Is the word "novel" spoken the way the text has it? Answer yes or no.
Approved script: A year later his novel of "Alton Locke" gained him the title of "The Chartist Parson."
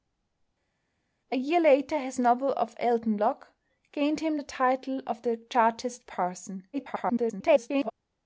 yes